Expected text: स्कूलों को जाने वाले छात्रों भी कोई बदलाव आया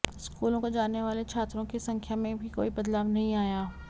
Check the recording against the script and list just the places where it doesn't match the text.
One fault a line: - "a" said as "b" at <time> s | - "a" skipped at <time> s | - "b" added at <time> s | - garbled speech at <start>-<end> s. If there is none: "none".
- "की संख्या में" added at 1.6 s
- "नहीं" added at 3.1 s